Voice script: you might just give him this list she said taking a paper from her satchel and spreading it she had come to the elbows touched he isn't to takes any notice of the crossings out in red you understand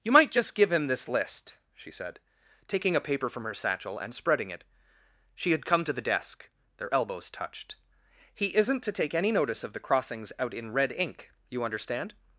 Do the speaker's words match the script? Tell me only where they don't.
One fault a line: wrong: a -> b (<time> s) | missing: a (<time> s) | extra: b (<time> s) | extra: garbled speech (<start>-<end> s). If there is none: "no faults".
extra: desk their (6.0 s)
wrong: takes -> take (8.9 s)
extra: ink (10.9 s)